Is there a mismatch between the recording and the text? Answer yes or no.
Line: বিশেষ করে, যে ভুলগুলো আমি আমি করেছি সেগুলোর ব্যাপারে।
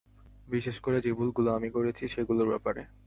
yes